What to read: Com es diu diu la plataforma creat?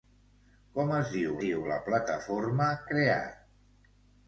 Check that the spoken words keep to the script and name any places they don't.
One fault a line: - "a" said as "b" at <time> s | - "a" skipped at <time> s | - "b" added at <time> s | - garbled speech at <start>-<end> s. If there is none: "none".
none